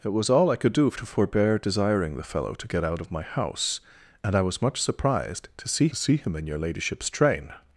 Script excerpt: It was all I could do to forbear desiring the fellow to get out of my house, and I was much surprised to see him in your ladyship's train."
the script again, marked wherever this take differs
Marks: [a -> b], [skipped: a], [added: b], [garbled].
It was all I could do to forbear desiring the fellow to get out of my house, and I was much surprised to see [added: see] him in your ladyship's train."